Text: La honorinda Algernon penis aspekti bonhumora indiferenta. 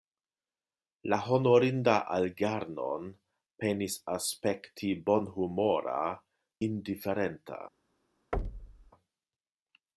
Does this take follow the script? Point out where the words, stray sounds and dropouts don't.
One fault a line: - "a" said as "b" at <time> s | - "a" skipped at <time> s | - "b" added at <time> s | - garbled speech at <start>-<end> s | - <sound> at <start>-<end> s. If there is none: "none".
- thud at 8.3-8.9 s